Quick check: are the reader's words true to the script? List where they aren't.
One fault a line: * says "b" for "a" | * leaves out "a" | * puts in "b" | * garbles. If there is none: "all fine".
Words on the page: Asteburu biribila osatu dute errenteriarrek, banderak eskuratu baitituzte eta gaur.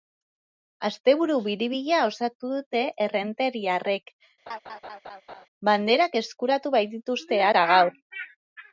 all fine